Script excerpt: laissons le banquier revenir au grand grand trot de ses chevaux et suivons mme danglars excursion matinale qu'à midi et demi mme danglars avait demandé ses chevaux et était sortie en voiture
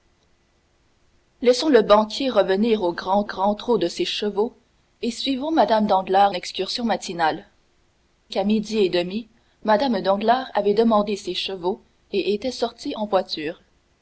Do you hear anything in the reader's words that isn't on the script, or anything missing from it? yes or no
no